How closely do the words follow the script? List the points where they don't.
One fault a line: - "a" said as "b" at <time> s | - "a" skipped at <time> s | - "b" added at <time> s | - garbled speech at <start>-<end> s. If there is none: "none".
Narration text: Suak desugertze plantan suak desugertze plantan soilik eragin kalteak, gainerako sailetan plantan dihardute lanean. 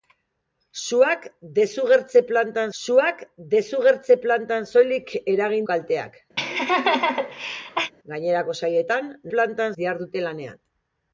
none